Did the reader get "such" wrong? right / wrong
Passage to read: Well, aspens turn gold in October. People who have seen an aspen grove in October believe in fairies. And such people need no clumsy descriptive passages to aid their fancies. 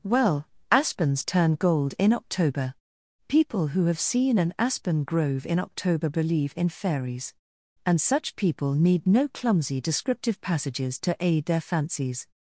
right